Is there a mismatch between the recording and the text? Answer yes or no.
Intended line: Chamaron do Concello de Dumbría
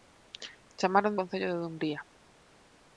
yes